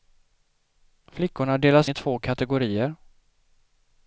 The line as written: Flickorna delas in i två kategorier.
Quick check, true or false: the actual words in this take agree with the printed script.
false